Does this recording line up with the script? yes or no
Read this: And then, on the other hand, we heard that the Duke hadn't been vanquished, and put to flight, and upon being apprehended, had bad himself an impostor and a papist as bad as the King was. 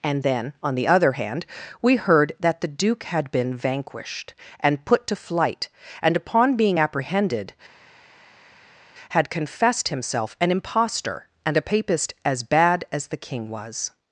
no